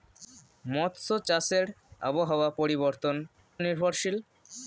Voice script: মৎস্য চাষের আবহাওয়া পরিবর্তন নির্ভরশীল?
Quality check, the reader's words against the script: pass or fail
pass